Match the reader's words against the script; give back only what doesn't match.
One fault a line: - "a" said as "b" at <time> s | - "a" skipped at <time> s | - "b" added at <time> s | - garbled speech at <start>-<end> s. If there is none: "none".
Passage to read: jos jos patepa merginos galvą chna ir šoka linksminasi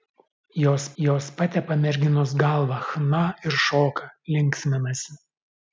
none